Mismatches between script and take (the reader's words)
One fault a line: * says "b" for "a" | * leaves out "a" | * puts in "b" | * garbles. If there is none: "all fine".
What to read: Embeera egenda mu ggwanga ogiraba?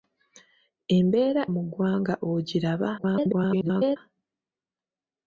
* leaves out "egenda"
* garbles